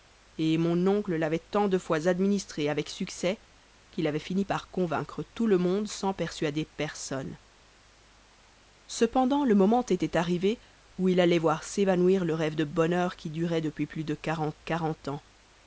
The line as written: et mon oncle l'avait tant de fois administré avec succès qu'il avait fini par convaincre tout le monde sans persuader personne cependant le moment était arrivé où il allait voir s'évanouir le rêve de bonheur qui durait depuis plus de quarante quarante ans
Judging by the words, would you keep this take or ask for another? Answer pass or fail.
pass